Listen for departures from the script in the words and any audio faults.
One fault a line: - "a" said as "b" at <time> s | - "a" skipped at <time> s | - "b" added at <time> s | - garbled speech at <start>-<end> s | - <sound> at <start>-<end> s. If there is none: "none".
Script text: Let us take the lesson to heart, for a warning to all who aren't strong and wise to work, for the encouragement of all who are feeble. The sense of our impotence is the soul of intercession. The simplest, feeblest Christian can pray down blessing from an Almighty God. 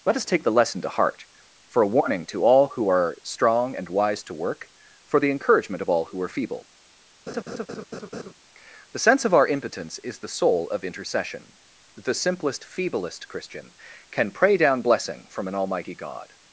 - "aren't" said as "are" at 2.9 s
- laugh at 7.3-8.3 s